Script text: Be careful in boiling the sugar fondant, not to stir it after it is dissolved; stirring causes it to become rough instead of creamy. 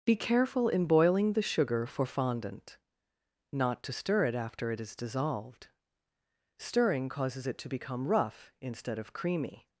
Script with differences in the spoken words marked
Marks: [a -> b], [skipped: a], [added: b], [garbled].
Be careful in boiling the sugar [added: for] fondant, not to stir it after it is dissolved; stirring causes it to become rough instead of creamy.